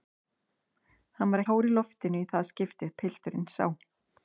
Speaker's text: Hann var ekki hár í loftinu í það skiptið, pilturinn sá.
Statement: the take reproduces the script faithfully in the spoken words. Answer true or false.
false